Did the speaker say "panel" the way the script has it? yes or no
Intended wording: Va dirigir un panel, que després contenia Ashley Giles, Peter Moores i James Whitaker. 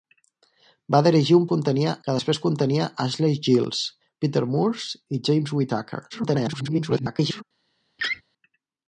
no